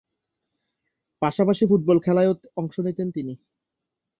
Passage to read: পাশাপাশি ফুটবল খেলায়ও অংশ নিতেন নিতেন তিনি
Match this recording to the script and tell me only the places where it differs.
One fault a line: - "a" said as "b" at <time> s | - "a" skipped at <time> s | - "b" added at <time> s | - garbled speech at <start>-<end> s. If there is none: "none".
- "নিতেন" skipped at 3.1 s